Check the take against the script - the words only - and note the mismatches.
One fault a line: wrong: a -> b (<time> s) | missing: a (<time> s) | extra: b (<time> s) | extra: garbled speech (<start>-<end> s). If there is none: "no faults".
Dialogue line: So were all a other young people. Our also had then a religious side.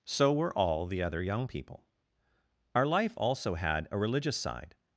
wrong: a -> the (0.9 s)
extra: life (2.9 s)
missing: then (3.9 s)